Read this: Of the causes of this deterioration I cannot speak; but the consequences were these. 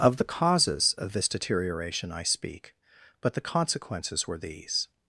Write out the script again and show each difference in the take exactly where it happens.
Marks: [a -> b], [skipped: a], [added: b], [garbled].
Of the causes of this deterioration I [skipped: cannot] speak; but the consequences were these.